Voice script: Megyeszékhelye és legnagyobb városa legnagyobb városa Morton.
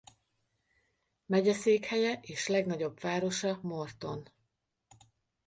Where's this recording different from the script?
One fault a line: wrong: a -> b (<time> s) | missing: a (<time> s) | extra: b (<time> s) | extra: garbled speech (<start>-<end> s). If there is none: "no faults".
missing: legnagyobb városa (3.6 s)